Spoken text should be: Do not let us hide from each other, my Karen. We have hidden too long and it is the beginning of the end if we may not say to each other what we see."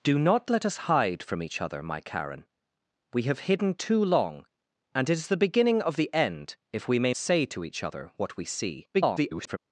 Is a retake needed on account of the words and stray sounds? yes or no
yes